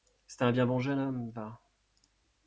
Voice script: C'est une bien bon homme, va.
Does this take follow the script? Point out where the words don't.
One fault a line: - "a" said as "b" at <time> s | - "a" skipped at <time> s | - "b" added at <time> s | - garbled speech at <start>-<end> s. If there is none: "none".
- "une" said as "un" at 0.4 s
- "jeune" added at 0.8 s